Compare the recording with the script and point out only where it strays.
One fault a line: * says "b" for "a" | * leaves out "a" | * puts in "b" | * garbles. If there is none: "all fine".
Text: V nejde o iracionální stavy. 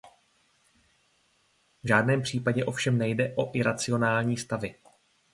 * puts in "žádném případě ovšem"